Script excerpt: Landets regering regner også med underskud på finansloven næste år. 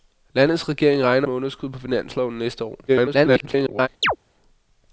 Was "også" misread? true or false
true